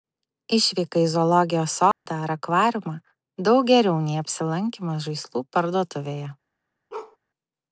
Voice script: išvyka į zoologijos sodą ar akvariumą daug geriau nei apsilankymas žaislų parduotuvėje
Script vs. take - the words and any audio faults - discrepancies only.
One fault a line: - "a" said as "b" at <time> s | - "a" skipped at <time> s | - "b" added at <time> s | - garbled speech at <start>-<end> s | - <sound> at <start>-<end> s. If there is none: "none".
- dropout at 1.9-2.1 s
- bark at 6.9-7.2 s